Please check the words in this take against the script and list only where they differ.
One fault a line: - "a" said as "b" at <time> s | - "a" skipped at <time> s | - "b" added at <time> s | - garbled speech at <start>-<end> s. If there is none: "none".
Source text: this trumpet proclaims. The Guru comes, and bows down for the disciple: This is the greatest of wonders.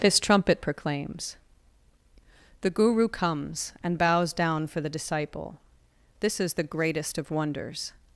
none